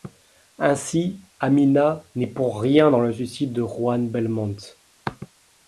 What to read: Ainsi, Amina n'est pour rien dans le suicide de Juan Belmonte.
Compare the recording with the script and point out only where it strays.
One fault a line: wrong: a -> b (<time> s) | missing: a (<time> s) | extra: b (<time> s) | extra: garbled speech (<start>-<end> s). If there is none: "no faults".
no faults